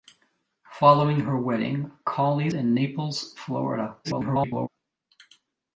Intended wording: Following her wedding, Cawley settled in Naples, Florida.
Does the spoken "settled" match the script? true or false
false